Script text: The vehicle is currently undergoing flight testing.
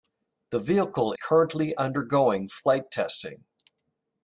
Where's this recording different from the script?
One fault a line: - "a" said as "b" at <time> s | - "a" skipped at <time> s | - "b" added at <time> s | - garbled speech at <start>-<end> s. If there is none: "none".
- "is" skipped at 1.1 s